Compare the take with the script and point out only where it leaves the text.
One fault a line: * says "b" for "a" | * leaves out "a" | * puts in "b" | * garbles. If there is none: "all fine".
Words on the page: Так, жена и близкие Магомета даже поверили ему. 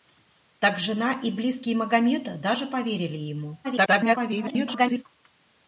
* garbles